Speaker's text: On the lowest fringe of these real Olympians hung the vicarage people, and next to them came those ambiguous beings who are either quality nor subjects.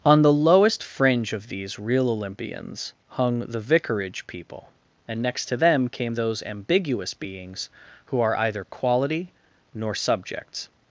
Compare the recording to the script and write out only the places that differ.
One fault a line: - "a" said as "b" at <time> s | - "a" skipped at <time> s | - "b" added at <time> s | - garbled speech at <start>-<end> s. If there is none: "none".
none